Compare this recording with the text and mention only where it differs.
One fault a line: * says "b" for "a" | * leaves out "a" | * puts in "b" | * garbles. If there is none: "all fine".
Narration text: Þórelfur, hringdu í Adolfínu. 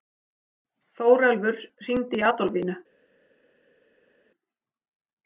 all fine